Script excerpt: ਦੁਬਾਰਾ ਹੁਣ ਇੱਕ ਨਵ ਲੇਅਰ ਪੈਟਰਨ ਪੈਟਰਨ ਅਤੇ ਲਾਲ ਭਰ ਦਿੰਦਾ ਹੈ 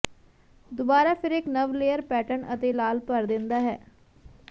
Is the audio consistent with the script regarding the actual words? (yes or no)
no